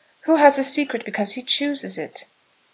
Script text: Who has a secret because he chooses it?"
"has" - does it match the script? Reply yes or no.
yes